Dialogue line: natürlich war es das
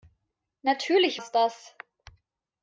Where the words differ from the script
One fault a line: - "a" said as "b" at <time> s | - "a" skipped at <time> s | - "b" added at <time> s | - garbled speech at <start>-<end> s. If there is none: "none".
- "war" skipped at 1.2 s